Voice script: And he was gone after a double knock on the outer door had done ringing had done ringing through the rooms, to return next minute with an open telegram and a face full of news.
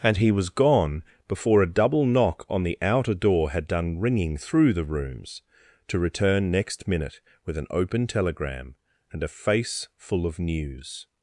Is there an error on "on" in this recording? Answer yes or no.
no